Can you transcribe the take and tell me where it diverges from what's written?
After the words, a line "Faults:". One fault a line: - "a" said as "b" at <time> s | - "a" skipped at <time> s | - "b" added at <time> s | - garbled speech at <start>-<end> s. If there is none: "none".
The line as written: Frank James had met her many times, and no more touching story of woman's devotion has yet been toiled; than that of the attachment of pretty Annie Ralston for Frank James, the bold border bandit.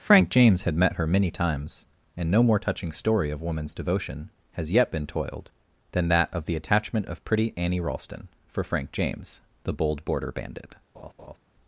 Frank James had met her many times, and no more touching story of woman's devotion has yet been toiled; than that of the attachment of pretty Annie Ralston for Frank James, the bold border bandit.
Faults:
none